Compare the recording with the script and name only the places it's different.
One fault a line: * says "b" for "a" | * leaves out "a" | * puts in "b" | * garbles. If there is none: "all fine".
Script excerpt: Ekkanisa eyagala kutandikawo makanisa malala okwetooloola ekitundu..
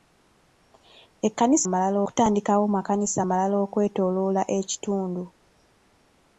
* says "malala" for "eyagala"